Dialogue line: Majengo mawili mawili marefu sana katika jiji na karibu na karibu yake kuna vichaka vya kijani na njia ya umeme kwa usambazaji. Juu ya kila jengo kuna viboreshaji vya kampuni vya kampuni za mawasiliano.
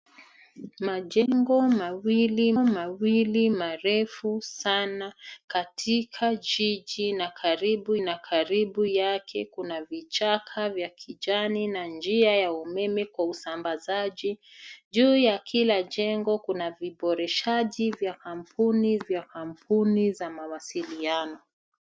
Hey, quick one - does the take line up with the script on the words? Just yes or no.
yes